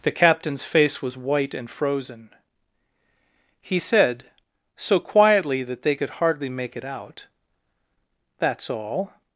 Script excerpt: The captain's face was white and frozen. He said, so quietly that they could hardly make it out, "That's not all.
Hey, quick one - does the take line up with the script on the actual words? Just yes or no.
no